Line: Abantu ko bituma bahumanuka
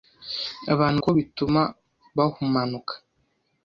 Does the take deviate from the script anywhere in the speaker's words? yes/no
no